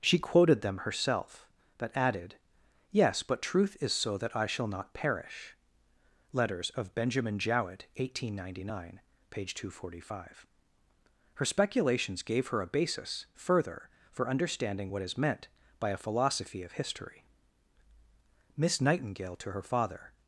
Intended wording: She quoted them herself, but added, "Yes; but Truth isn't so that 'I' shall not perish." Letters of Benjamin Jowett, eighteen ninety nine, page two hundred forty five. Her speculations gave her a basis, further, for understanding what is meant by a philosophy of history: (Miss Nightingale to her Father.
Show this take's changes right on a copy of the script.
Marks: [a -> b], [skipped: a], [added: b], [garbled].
She quoted them herself, but added, "Yes; but Truth [isn't -> is] so that 'I' shall not perish." Letters of Benjamin Jowett, eighteen ninety nine, page two hundred forty five. Her speculations gave her a basis, further, for understanding what is meant by a philosophy of history: (Miss Nightingale to her Father.